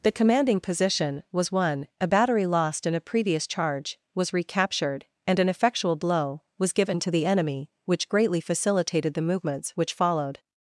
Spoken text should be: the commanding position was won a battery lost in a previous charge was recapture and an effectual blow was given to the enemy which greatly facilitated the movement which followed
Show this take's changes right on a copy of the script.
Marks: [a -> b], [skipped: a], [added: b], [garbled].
the commanding position was won a battery lost in a previous charge was [recapture -> recaptured] and an effectual blow was given to the enemy which greatly facilitated the [movement -> movements] which followed